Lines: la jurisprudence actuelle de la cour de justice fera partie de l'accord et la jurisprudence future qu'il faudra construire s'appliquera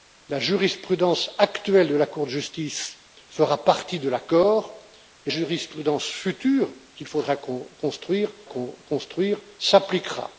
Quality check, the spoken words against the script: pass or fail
fail